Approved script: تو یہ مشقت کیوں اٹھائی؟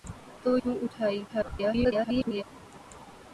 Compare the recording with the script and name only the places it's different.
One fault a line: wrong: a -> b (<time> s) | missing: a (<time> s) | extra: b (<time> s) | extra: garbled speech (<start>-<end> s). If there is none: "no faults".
missing: یہ مشقت (0.6 s)
extra: garbled speech (1.3-2.4 s)